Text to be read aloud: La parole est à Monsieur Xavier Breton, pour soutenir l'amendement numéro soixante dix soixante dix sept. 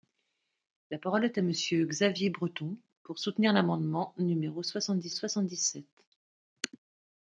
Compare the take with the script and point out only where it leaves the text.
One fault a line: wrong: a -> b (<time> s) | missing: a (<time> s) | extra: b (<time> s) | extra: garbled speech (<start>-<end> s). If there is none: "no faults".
no faults